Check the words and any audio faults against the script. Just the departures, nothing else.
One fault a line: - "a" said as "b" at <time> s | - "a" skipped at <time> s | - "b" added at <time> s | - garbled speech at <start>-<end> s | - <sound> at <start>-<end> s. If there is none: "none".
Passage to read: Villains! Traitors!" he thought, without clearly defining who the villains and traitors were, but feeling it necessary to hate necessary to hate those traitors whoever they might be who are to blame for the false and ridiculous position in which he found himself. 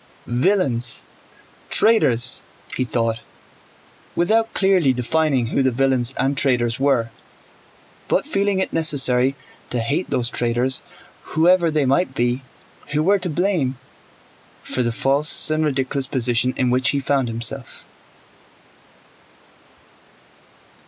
- "necessary to hate" skipped at 10.1 s
- "are" said as "were" at 13.0 s